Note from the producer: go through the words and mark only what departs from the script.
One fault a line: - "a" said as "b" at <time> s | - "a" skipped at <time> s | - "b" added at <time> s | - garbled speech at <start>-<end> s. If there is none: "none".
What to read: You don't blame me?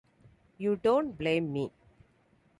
none